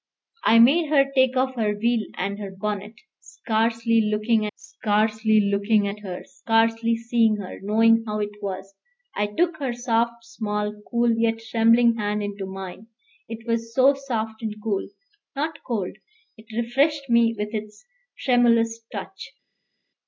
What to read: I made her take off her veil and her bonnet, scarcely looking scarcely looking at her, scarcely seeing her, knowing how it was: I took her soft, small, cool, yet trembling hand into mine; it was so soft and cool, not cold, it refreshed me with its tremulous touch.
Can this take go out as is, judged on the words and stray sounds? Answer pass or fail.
pass